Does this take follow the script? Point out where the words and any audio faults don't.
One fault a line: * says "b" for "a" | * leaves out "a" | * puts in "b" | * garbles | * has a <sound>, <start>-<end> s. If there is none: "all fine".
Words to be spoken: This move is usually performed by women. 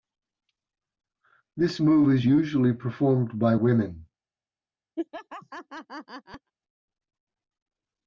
* has a laugh, 5.0-6.5 s